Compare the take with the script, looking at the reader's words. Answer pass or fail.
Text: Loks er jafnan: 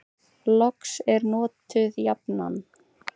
fail